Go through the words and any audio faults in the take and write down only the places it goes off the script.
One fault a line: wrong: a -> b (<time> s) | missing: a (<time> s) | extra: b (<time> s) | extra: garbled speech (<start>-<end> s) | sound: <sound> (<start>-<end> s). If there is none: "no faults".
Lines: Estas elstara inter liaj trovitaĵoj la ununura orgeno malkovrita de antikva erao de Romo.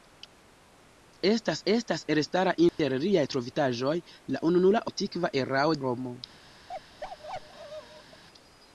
extra: estas (1.7 s)
sound: dropout (2.7-2.8 s)
missing: orgeno malkovrita de (4.8 s)
missing: de (5.8 s)
sound: bark (6.7-8.2 s)